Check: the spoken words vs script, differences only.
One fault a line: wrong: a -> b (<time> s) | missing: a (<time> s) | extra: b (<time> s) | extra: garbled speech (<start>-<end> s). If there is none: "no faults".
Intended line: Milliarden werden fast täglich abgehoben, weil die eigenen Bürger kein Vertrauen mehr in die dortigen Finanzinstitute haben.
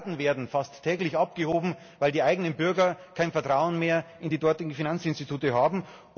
no faults